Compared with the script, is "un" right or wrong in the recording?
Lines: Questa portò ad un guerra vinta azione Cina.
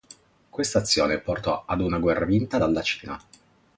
wrong